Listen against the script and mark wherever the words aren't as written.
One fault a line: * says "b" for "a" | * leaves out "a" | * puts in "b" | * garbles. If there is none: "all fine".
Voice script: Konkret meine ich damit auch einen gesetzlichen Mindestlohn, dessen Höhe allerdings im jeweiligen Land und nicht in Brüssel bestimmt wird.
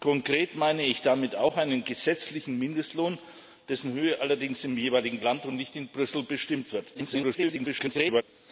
* garbles